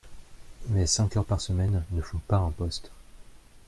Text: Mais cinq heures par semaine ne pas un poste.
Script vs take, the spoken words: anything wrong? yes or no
yes